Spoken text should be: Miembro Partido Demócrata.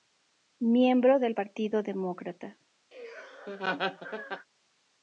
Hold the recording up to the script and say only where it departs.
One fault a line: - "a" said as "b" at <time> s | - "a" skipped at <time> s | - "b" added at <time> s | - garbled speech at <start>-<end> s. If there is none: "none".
- "del" added at 1.2 s